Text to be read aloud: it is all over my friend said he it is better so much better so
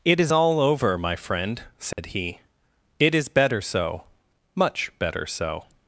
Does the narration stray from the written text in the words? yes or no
no